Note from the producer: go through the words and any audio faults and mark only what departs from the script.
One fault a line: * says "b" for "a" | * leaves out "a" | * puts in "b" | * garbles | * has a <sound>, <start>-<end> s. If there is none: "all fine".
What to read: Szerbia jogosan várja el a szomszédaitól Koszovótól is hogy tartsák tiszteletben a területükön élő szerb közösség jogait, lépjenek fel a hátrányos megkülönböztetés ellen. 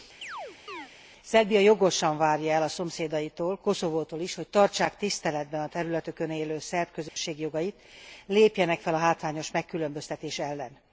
* has a chirp, 0.2-0.9 s
* has a dropout, 7.1-7.2 s